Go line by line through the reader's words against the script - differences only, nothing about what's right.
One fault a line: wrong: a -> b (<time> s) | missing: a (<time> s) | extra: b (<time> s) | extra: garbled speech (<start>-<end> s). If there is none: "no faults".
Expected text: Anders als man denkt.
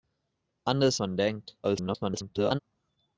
missing: als (1.0 s)
extra: garbled speech (1.6-2.6 s)